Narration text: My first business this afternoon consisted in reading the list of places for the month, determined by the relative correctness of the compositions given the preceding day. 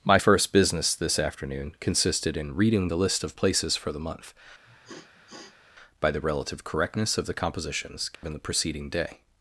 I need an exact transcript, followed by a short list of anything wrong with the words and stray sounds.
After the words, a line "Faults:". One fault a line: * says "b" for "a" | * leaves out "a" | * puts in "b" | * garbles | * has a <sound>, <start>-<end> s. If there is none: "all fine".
My first business this afternoon consisted in reading the list of places for the month, by the relative correctness of the compositions given the preceding day.
Faults:
* leaves out "determined"
* has a sniff, 4.6-5.7 s
* has a dropout, 8.1-8.2 s